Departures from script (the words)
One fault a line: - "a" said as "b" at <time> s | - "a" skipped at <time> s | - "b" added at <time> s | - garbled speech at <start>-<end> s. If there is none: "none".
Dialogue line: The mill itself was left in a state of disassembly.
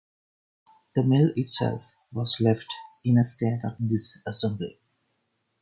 none